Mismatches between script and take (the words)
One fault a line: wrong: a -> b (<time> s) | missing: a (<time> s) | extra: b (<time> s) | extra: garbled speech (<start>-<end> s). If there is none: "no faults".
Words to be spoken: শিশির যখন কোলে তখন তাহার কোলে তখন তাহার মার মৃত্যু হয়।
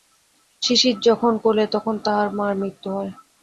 missing: কোলে তখন তাহার (2.3 s)